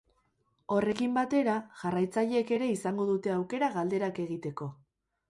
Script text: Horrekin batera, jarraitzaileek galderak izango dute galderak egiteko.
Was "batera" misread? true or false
false